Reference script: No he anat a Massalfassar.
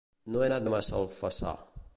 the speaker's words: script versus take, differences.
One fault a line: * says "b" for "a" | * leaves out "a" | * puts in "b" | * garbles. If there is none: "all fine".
all fine